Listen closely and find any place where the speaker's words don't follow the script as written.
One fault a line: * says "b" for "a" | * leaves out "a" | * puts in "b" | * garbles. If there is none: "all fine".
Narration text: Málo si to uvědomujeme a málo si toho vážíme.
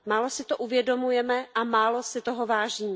all fine